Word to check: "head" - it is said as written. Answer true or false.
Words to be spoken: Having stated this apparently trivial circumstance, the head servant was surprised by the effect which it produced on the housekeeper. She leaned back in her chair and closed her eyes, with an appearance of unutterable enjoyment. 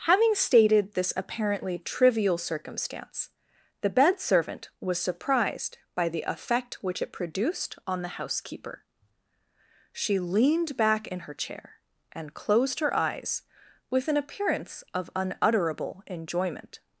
false